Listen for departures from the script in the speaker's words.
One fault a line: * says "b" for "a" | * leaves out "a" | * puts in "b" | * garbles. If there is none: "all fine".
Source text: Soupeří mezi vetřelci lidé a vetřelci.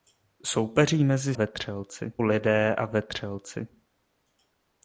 all fine